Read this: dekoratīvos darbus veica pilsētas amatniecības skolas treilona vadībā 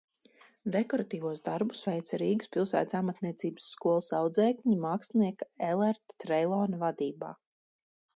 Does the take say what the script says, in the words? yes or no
no